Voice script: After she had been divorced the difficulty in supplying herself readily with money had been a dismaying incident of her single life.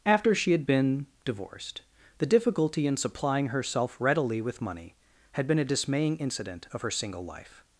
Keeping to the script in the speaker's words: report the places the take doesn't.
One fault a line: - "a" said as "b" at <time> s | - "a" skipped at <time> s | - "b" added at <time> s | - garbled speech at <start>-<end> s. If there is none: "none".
none